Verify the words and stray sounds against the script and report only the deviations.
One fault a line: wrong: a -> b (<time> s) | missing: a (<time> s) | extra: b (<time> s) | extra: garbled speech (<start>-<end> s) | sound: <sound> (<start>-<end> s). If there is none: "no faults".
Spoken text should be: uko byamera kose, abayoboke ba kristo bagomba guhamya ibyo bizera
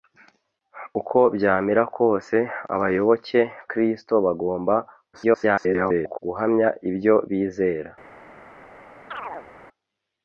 missing: ba (3.4 s)
extra: garbled speech (5.1-6.2 s)
sound: chirp (9.1-9.5 s)